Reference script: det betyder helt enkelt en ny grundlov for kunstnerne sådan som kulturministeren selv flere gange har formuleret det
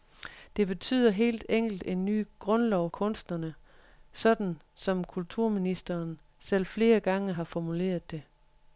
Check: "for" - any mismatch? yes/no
yes